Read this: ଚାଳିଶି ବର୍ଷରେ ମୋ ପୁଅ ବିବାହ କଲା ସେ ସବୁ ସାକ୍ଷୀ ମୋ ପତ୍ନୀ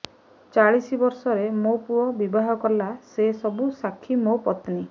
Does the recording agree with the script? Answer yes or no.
yes